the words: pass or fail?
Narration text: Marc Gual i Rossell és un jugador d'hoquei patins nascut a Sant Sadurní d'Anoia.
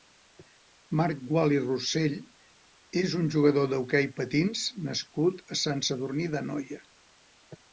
pass